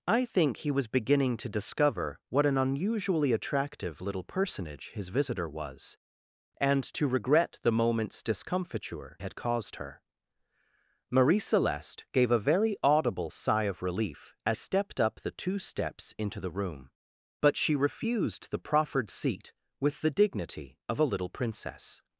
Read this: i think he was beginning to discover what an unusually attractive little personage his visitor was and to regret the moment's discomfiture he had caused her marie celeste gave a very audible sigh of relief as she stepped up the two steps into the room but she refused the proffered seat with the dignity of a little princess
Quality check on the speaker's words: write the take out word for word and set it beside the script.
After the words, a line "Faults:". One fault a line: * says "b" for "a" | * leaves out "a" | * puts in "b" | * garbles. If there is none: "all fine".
i think he was beginning to discover what an unusually attractive little personage his visitor was and to regret the moment's discomfiture had caused her marie celeste gave a very audible sigh of relief as stepped up the two steps into the room but she refused the proffered seat with the dignity of a little princess
Faults:
* leaves out "he"
* leaves out "she"